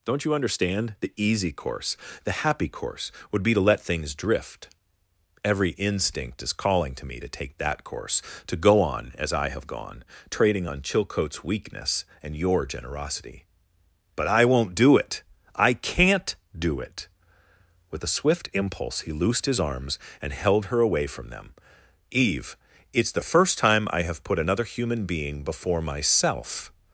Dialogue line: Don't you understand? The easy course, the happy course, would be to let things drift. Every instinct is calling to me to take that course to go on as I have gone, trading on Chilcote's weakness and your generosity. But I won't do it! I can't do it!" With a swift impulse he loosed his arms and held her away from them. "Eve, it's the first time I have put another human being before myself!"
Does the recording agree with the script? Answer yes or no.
yes